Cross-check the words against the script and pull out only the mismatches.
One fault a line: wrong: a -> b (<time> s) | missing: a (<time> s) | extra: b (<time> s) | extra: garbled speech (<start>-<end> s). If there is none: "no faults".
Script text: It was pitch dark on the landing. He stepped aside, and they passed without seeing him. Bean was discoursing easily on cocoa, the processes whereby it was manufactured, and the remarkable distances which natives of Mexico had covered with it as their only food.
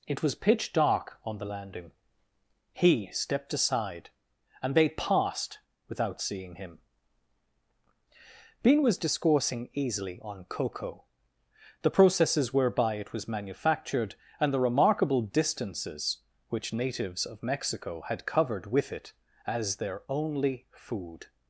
no faults